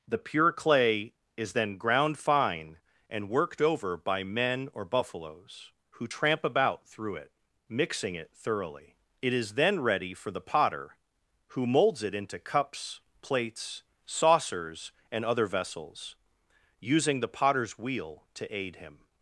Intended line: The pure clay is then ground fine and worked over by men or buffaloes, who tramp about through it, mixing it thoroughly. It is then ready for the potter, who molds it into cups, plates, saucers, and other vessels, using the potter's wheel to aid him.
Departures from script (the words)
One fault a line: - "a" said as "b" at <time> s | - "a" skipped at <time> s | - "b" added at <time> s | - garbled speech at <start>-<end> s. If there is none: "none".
none